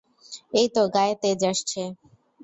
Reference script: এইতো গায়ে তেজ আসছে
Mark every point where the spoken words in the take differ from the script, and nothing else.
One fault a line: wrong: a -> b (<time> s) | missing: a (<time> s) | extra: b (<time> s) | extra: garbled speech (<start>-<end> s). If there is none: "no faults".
no faults